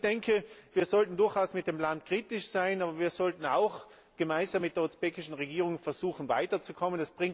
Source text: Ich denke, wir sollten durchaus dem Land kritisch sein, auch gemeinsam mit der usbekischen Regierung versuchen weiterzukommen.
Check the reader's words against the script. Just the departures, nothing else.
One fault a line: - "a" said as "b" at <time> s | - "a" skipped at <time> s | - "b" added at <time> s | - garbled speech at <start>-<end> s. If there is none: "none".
- "mit" added at 1.5 s
- "aber wir sollten" added at 2.8 s